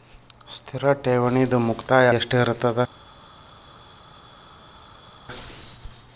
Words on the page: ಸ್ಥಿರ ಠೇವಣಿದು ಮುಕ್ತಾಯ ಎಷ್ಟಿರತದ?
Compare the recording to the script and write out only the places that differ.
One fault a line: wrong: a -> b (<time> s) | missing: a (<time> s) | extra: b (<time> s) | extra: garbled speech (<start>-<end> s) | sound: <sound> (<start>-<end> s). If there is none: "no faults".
no faults